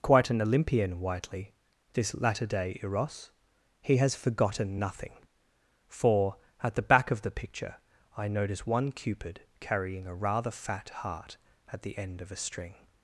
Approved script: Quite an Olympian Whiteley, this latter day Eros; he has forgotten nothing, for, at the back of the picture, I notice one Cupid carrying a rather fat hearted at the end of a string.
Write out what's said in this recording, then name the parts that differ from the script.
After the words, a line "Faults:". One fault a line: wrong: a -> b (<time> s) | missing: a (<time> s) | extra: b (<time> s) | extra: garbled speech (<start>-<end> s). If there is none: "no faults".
Quite an Olympian Whiteley, this latter day Eros; he has forgotten nothing, for, at the back of the picture, I notice one Cupid carrying a rather fat heart at the end of a string.
Faults:
wrong: hearted -> heart (10.9 s)